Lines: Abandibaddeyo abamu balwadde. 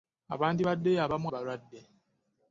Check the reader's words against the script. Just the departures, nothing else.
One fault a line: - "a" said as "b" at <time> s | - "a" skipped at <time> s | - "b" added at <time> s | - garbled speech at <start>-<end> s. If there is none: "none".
none